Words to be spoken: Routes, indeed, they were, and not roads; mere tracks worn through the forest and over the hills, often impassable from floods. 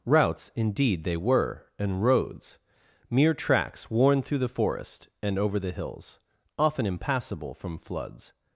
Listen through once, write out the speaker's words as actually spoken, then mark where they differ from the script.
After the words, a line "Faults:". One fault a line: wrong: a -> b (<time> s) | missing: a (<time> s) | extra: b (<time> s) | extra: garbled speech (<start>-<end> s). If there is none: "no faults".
Routes, indeed, they were, and roads; mere tracks worn through the forest and over the hills, often impassable from floods.
Faults:
missing: not (2.0 s)